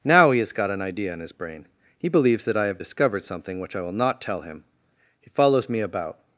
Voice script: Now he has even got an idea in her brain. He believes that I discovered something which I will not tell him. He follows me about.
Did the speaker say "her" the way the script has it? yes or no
no